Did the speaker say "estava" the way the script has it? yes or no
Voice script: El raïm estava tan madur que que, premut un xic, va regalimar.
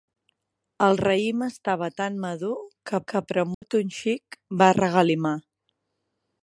yes